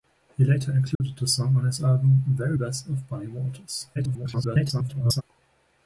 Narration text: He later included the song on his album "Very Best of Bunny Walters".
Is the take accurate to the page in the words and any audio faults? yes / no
no